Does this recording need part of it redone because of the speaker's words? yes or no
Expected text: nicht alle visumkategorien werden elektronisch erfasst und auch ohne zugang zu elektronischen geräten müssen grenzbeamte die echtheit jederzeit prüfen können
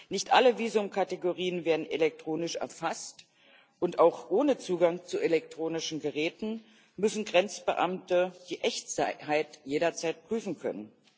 no